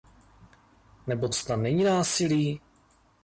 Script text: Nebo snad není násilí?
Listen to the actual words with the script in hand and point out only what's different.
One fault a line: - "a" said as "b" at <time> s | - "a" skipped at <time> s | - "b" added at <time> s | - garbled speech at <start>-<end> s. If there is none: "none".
none